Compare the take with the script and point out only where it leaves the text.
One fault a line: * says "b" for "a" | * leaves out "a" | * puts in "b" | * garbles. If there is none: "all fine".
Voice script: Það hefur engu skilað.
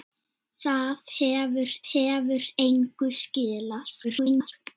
* puts in "hefur"
* garbles